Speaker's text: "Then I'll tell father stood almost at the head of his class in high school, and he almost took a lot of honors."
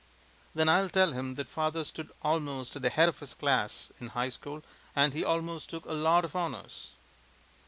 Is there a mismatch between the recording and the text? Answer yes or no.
yes